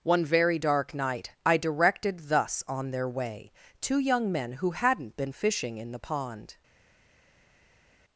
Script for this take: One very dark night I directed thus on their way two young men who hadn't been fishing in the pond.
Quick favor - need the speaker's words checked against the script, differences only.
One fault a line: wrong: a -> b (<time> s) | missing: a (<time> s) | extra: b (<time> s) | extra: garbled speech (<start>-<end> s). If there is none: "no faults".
no faults